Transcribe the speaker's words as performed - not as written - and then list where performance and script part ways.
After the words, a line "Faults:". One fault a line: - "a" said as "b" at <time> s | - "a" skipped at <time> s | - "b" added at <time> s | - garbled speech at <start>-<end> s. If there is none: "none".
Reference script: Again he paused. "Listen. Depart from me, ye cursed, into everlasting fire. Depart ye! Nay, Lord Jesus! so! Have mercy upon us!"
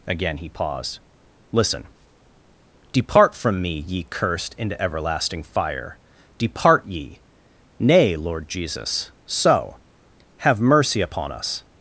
Again he paused. "Listen. Depart from me, ye cursed, into everlasting fire. Depart ye! Nay, Lord Jesus! so! Have mercy upon us!"
Faults:
none